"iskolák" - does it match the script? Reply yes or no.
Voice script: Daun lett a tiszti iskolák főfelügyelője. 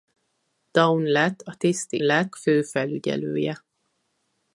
no